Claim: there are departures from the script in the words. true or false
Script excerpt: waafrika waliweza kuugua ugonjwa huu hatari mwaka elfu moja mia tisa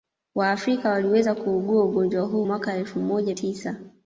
true